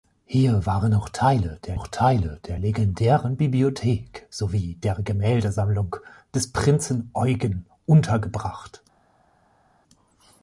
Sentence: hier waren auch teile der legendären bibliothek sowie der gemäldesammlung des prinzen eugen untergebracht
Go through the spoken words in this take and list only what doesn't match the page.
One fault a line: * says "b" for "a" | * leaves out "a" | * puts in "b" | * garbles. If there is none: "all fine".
* puts in "auch teile der"